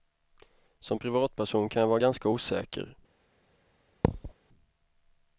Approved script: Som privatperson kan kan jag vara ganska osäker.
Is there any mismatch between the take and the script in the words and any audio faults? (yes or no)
yes